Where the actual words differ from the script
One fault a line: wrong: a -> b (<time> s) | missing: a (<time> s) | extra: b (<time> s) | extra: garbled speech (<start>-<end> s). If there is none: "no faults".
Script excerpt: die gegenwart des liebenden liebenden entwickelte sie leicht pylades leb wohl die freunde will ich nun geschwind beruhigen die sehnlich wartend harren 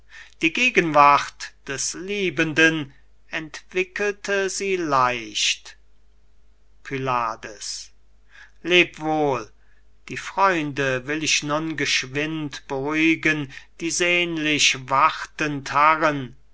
missing: liebenden (2.9 s)